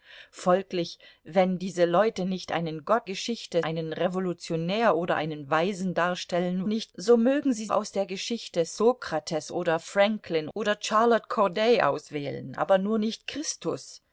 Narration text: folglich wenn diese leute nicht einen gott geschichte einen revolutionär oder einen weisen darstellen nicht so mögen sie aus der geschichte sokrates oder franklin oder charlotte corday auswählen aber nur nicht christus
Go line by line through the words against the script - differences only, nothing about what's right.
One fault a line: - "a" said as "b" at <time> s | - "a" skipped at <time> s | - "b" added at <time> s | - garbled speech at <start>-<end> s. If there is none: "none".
none